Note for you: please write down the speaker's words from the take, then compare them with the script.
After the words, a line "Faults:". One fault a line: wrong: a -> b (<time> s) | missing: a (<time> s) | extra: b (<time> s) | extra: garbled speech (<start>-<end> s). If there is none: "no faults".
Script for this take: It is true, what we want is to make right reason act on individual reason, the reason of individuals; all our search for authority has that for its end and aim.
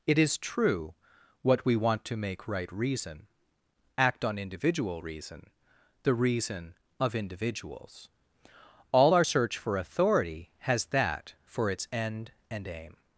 It is true, what we want to make right reason act on individual reason, the reason of individuals; all our search for authority has that for its end and aim.
Faults:
missing: is (2.0 s)